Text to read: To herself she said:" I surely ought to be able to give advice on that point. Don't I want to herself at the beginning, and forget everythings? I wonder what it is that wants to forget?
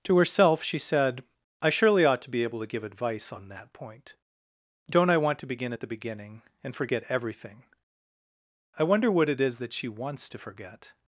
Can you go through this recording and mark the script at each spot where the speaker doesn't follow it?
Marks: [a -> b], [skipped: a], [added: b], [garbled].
To herself she said:" I surely ought to be able to give advice on that point. Don't I want to [herself -> begin] at the beginning, and forget [everythings? -> everything] I wonder what it is that [added: she] wants to forget?